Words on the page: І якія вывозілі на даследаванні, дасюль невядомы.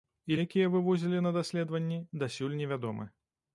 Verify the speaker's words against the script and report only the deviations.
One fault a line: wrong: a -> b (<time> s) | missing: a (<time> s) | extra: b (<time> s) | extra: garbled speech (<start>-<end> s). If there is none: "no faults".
no faults